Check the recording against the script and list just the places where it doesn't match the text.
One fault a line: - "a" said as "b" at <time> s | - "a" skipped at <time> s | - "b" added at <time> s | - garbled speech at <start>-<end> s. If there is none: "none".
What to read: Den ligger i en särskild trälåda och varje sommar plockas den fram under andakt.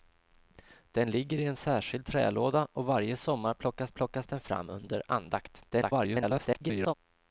- "plockas" added at 3.9 s
- garbled speech at 5.7-6.9 s